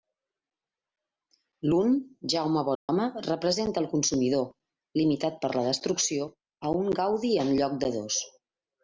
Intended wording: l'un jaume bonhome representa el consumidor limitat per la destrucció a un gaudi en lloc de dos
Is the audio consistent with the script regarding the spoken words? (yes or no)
yes